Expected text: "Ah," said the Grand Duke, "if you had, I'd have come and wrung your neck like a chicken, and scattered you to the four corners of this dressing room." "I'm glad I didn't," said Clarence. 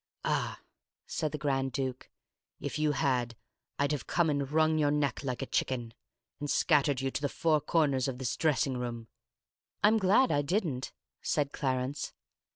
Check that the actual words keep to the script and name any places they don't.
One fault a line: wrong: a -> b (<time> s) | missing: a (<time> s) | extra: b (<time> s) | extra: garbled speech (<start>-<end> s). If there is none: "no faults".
no faults